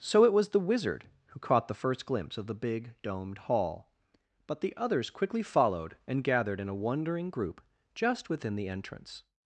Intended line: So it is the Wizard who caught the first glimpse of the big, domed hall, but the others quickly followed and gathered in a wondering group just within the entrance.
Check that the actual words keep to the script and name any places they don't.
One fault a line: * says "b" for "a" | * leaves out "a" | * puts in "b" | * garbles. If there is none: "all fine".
* says "was" for "is"